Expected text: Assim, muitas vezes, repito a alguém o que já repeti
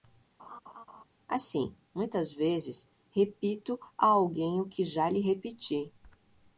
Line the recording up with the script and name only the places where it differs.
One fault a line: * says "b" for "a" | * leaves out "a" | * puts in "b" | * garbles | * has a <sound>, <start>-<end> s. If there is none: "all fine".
* has a laugh, 0.4-1.0 s
* puts in "lhe"